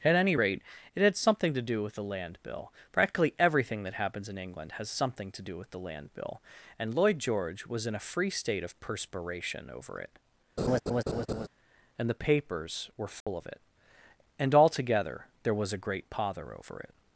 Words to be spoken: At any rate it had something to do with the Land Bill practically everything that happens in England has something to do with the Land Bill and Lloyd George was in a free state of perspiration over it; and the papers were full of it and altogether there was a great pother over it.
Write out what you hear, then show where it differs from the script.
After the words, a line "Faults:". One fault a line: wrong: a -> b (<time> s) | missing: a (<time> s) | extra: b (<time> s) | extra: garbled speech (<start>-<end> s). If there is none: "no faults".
At any rate it had something to do with the Land Bill practically everything that happens in England has something to do with the Land Bill and Lloyd George was in a free state of perspiration over it; and the papers were full of it and altogether there was a great pother over it.
Faults:
no faults